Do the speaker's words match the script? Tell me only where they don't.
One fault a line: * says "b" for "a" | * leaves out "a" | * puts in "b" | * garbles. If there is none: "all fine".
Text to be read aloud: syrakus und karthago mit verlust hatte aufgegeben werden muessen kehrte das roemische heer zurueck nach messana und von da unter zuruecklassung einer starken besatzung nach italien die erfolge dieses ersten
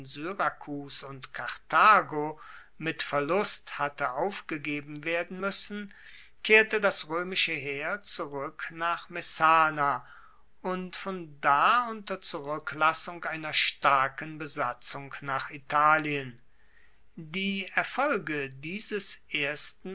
all fine